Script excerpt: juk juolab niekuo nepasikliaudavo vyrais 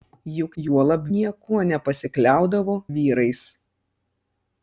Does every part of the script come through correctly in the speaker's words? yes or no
yes